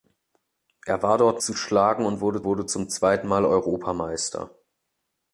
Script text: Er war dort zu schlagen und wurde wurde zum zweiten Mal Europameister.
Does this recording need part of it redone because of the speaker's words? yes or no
no